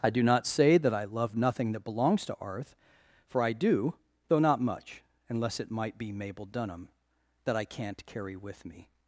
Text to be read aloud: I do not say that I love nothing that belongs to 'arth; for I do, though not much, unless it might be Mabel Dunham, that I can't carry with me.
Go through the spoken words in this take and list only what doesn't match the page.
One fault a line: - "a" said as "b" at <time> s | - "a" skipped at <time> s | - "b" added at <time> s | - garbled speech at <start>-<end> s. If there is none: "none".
none